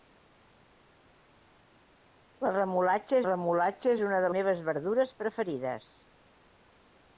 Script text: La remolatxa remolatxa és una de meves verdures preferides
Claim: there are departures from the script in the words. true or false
false